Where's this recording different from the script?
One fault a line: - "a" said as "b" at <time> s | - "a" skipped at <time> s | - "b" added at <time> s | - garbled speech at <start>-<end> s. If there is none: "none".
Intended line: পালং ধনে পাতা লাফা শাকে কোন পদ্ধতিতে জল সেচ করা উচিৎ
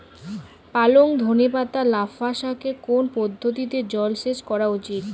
none